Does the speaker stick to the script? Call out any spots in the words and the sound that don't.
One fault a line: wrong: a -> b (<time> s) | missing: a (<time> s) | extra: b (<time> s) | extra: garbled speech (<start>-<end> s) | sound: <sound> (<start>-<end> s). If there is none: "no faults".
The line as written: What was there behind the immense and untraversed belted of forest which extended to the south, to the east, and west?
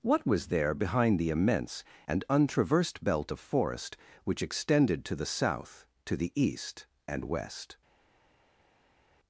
wrong: belted -> belt (3.0 s)